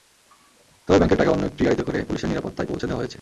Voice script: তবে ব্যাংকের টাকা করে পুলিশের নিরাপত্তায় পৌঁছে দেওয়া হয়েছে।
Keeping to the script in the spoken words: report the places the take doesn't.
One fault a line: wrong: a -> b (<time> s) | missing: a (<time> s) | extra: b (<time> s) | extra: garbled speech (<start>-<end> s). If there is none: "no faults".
extra: অন্য একটি গাড়িতে (1.3 s)